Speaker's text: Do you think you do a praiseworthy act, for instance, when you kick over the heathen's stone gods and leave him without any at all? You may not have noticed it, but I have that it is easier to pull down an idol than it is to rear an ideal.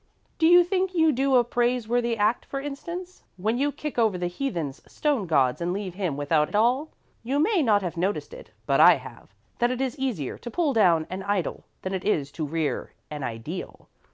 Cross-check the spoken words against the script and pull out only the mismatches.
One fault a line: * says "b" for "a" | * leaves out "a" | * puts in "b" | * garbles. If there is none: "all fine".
* leaves out "any"